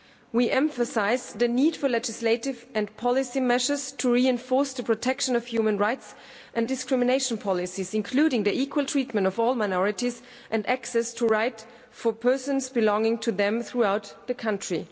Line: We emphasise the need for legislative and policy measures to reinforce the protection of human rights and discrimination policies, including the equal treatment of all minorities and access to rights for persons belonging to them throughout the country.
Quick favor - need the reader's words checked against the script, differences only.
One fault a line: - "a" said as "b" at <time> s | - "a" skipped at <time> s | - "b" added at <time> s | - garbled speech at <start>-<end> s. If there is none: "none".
none